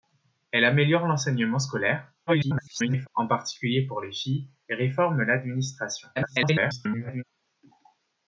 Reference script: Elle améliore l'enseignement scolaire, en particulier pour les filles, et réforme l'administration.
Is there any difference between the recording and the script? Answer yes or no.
yes